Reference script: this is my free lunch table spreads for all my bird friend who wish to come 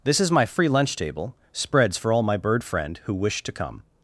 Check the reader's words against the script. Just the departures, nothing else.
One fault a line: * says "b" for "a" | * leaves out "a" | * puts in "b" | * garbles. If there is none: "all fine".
all fine